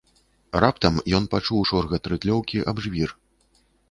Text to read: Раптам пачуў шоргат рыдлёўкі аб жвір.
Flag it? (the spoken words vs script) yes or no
yes